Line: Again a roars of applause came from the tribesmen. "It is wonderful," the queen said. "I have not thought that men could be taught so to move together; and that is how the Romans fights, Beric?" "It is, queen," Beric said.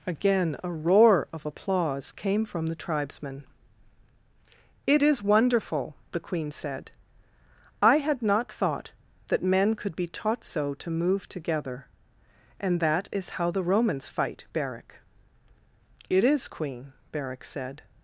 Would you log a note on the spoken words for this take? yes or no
yes